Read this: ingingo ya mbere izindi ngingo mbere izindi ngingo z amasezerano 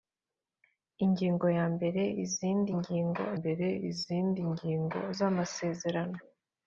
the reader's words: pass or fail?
pass